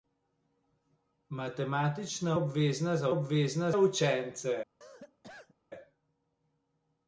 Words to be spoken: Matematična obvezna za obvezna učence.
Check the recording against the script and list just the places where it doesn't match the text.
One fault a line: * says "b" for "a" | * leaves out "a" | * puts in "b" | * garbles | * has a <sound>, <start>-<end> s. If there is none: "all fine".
* has a cough, 4.8-5.5 s